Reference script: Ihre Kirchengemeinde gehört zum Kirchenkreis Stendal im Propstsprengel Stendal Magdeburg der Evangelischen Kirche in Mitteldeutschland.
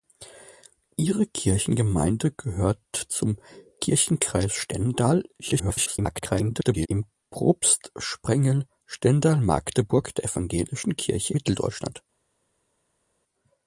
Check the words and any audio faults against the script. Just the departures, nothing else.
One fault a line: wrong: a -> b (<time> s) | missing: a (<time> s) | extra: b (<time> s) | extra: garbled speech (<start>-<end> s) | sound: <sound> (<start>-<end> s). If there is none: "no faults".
extra: garbled speech (5.4-6.9 s)
missing: in (11.3 s)